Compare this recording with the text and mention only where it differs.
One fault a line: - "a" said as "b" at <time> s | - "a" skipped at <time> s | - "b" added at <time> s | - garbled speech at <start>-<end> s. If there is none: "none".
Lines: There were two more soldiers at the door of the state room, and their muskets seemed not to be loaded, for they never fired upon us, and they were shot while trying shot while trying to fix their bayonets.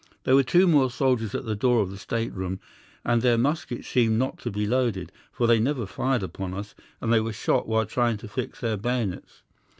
- "shot while trying" skipped at 8.2 s